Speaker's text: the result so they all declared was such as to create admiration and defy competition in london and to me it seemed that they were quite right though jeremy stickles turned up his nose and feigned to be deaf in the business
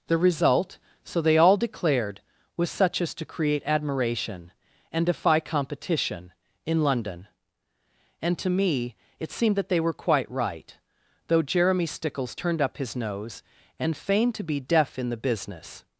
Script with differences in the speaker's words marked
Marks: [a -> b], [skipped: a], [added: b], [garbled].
the result so they all declared was such as to create admiration and defy competition in london and to me it seemed that they were quite right though jeremy stickles turned up his nose and feigned to be deaf in the business